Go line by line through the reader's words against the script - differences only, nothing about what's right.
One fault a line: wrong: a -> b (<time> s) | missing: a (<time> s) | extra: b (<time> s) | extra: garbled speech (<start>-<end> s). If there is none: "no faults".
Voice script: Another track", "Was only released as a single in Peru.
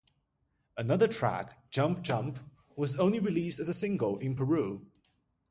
extra: Jump Jump (1.7 s)